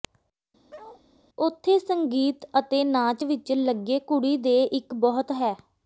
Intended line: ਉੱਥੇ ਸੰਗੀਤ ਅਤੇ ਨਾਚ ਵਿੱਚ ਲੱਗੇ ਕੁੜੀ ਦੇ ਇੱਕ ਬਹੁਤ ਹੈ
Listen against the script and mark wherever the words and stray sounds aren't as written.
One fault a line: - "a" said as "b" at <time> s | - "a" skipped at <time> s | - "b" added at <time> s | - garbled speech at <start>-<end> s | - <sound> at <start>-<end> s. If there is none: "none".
- bark at 0.7-1.0 s